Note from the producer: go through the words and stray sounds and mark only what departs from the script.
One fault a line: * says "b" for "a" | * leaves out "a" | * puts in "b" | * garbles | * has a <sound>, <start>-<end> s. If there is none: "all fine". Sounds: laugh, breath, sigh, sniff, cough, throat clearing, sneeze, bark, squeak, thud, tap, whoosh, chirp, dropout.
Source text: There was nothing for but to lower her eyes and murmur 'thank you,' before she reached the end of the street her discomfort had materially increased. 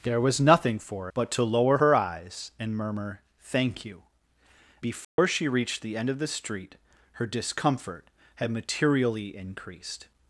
* has a dropout, 5.0-5.2 s